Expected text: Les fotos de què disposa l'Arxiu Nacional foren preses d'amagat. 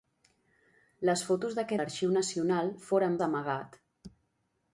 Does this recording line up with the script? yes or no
no